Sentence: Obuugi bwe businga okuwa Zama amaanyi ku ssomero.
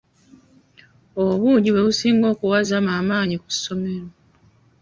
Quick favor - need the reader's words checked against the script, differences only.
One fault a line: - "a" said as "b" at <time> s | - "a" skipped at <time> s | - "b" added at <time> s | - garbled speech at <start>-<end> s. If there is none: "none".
none